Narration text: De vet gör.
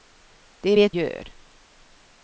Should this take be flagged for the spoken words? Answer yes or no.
no